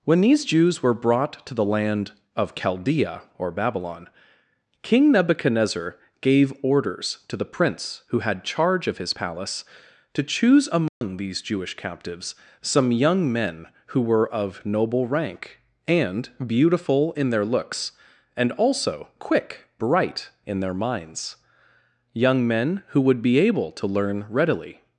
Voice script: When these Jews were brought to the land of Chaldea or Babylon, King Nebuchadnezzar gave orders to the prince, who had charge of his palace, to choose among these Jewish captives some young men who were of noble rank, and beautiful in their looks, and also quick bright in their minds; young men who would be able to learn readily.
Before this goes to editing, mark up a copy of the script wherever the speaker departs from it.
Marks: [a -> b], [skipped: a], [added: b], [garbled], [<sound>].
When these Jews were brought to the land of Chaldea or Babylon, King Nebuchadnezzar gave orders to the prince, who had charge of his palace, to choose among [dropout] these Jewish captives some young men who were of noble rank, and beautiful in their looks, and also quick bright in their minds; young men who would be able to learn readily.